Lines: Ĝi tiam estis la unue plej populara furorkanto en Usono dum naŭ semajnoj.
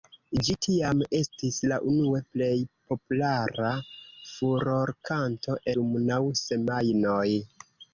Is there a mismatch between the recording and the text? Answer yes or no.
yes